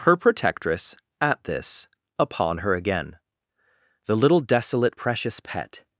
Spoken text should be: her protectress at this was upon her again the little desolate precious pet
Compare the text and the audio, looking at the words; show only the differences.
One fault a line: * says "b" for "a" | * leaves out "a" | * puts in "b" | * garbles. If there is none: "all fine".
* leaves out "was"